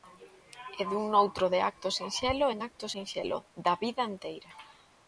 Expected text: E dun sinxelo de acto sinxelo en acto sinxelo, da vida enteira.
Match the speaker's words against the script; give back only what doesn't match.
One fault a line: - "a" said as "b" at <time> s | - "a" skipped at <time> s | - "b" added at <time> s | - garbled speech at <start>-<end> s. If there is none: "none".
- "sinxelo" said as "noutro" at 1.1 s